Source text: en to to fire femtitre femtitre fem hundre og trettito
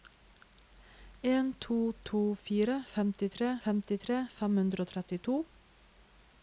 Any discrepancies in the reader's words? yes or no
no